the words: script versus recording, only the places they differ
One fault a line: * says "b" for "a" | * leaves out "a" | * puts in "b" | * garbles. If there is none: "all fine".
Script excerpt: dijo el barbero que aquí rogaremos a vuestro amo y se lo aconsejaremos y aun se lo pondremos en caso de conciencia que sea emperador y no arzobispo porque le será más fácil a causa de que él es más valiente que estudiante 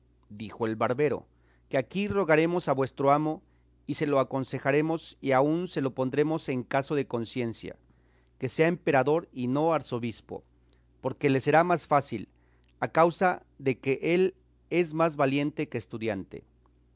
all fine